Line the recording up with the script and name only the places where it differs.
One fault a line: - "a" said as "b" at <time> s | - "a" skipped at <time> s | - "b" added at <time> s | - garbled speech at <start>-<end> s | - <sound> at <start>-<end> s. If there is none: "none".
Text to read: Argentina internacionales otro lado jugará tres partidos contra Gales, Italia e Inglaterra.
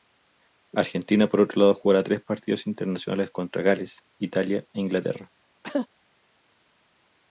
- "internacionales" said as "por" at 1.3 s
- "internacionales" added at 2.6 s
- cough at 5.6-5.9 s